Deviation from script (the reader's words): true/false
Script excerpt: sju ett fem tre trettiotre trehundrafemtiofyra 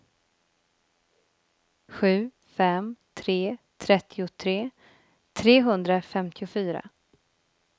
true